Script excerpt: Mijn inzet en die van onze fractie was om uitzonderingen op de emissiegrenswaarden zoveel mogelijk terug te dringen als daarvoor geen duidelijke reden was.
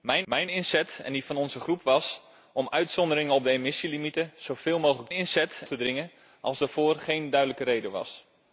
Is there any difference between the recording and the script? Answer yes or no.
yes